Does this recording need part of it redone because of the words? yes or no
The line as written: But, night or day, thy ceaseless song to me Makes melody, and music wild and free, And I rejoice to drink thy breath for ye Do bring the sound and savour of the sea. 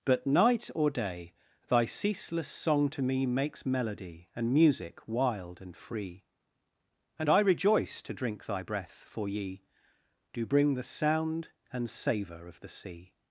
no